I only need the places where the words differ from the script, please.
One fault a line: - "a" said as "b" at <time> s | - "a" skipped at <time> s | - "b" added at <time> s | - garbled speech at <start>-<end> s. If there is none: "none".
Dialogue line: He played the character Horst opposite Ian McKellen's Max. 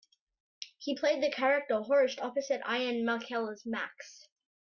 none